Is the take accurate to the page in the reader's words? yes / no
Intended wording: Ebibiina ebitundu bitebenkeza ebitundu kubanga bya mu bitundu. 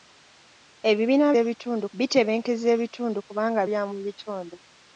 yes